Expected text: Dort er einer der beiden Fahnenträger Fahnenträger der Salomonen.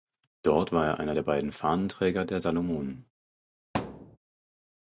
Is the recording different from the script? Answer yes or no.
yes